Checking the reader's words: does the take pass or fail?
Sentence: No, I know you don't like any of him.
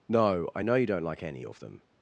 fail